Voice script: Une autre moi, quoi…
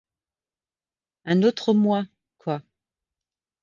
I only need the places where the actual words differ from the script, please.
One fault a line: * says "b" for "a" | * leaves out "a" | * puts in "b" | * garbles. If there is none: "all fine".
* says "Un" for "Une"